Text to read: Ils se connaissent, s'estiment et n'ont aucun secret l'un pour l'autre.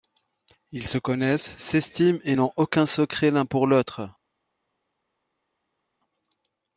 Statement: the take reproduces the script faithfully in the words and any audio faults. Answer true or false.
true